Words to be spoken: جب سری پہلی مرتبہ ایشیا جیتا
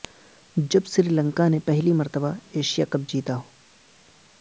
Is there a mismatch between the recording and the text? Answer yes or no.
yes